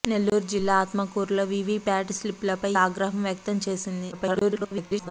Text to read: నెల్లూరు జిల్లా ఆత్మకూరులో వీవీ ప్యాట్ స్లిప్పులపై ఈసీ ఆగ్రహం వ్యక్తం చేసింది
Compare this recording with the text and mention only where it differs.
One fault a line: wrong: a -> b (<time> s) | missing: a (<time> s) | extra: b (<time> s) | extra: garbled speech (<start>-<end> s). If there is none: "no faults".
missing: ఈసీ (2.7 s)
extra: garbled speech (4.1-5.1 s)